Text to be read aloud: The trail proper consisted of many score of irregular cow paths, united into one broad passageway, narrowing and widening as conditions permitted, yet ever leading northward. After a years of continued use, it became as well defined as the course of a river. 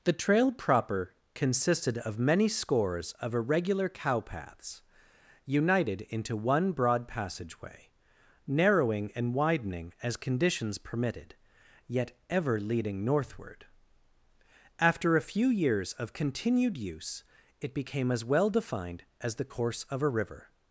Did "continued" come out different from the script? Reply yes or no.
no